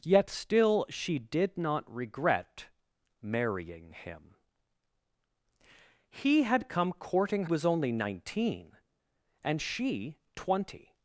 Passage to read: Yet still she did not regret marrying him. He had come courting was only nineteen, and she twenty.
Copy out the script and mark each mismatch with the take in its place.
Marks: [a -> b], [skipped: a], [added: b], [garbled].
Yet still she did not regret marrying him. He had come courting was only nineteen, and she twenty.